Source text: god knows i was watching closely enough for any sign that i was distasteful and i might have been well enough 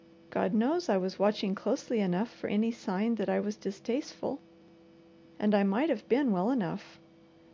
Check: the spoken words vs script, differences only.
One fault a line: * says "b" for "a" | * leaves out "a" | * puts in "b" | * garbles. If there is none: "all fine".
all fine